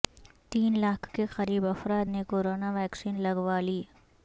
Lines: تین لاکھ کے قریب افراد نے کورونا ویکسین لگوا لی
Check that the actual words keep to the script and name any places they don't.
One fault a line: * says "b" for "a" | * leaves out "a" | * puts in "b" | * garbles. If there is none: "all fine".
all fine